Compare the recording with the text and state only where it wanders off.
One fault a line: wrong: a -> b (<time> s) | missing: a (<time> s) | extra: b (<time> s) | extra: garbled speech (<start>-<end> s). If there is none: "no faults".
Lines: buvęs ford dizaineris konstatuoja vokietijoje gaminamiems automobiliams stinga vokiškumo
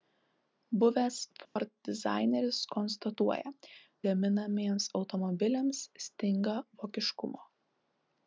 missing: vokietijoje (3.5 s)